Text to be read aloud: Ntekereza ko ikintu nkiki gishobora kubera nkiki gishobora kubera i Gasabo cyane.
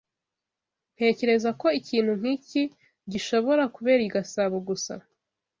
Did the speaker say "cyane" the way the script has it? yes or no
no